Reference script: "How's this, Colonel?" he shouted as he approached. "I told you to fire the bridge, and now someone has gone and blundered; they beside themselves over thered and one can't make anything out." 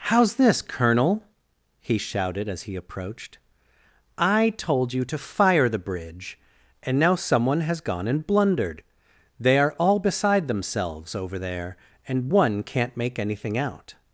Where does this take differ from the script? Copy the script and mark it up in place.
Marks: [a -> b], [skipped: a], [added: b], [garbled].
"How's this, Colonel?" he shouted as he approached. "I told you to fire the bridge, and now someone has gone and blundered; they [added: are all] beside themselves over [thered -> there] and one can't make anything out."